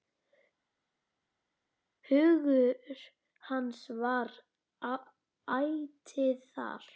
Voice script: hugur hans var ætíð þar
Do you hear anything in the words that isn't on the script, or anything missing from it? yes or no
no